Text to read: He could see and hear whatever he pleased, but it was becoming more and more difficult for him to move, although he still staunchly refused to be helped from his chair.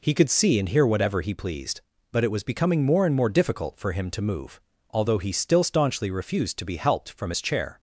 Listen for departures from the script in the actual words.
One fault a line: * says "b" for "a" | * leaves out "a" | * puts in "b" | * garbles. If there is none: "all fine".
all fine